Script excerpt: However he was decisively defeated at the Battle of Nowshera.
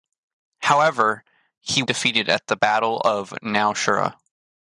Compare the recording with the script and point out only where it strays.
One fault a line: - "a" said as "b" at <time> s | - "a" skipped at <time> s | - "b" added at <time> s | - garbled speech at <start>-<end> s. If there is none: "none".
- "was decisively" skipped at 1.8 s